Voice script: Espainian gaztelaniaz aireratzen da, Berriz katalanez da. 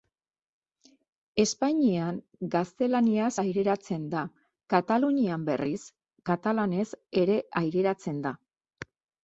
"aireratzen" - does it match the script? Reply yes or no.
yes